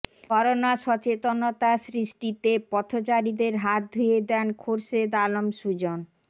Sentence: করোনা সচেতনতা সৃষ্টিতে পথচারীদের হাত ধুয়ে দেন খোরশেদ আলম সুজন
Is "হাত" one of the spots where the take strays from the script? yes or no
no